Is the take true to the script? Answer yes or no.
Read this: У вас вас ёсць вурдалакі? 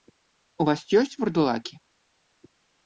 no